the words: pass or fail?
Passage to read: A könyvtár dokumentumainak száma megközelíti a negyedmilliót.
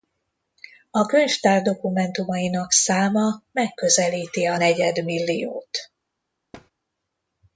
pass